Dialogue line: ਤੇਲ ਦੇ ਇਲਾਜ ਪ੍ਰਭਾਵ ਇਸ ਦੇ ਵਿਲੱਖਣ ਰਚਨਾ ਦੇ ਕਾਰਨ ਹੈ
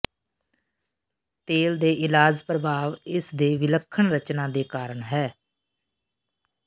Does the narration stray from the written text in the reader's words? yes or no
no